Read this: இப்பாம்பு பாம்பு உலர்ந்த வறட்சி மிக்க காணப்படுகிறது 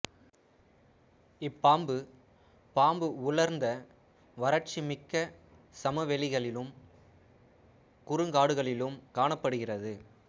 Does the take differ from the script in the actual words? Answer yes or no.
yes